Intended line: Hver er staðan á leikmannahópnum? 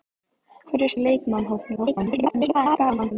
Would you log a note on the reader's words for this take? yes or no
yes